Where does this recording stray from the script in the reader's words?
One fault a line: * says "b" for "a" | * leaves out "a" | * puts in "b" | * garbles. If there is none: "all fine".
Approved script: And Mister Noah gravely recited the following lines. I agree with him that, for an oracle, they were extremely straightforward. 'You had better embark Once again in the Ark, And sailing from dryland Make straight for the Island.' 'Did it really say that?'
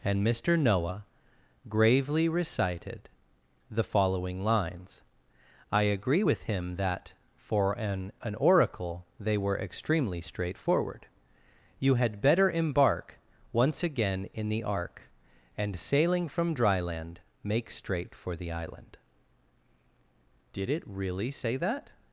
* puts in "an"